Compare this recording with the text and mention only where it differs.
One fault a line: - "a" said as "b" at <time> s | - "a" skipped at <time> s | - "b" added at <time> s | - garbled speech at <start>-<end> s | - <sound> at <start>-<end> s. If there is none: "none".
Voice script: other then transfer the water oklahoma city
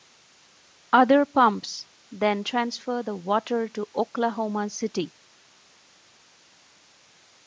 - "pumps" added at 1.2 s
- "to" added at 3.6 s